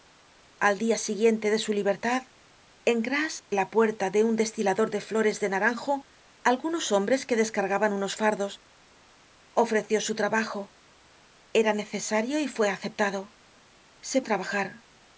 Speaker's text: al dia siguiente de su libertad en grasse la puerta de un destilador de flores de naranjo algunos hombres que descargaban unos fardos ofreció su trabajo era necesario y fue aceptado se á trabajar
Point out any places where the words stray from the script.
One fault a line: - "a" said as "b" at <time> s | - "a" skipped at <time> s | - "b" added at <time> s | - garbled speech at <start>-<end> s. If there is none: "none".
none